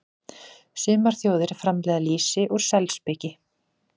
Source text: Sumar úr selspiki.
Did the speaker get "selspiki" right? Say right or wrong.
right